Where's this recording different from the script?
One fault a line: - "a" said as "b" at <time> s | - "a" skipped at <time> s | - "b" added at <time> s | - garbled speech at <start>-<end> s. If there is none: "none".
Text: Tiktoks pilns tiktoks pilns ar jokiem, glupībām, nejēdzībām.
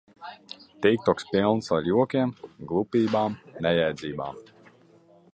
- "tiktoks pilns" skipped at 1.7 s